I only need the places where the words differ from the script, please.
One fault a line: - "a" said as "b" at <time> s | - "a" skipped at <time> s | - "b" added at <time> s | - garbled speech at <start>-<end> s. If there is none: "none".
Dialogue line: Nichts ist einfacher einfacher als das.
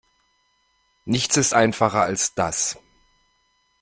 - "einfacher" skipped at 2.0 s